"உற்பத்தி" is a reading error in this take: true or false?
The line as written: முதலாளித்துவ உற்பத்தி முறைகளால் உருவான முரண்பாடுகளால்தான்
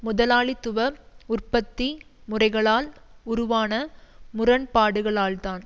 false